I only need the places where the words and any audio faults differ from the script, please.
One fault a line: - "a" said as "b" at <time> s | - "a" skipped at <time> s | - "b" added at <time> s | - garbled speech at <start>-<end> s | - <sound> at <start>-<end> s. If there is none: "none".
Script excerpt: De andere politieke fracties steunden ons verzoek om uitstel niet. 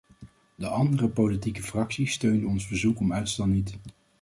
none